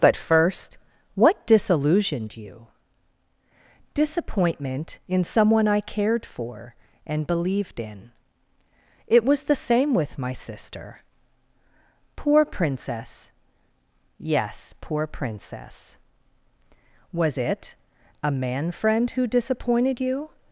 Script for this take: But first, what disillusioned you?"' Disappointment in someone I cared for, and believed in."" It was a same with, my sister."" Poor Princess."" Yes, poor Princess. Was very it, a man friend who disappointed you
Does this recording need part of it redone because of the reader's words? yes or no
yes